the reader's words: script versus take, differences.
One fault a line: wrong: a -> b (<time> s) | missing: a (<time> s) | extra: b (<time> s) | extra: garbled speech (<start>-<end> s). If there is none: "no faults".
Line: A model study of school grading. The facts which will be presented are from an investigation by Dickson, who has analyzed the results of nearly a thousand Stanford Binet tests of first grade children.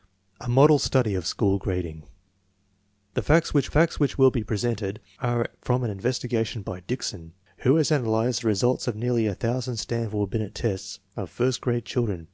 extra: facts which (3.7 s)